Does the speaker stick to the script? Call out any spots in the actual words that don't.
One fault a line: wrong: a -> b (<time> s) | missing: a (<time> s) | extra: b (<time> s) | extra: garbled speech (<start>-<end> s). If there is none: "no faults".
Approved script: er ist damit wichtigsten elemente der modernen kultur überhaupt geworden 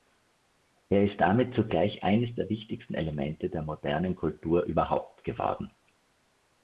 extra: zugleich eines der (1.6 s)